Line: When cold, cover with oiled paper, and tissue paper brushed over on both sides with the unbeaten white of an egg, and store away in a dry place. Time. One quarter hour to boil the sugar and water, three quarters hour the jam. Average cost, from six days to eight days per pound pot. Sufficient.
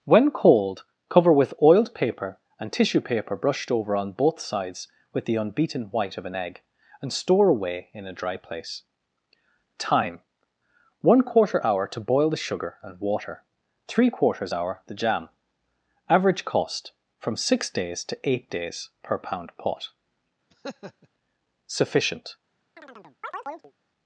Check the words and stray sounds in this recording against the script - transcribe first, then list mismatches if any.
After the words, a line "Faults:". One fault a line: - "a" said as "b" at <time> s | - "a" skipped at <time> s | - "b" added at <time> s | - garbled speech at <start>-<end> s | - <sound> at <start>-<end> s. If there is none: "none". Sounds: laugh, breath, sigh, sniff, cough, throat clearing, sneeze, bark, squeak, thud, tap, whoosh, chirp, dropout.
When cold, cover with oiled paper, and tissue paper brushed over on both sides with the unbeaten white of an egg, and store away in a dry place. Time. One quarter hour to boil the sugar and water, three quarters hour the jam. Average cost, from six days to eight days per pound pot. Sufficient.
Faults:
- laugh at 20.5-21.1 s
- chirp at 22.8-23.7 s